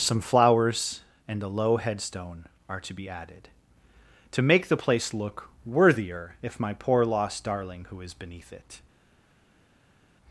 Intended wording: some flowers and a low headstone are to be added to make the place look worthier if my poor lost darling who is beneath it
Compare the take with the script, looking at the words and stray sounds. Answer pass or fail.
pass